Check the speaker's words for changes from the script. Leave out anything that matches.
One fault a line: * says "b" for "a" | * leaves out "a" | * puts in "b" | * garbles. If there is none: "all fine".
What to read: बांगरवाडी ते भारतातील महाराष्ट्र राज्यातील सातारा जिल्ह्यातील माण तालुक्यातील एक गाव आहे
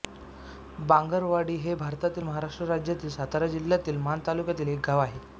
* says "हे" for "ते"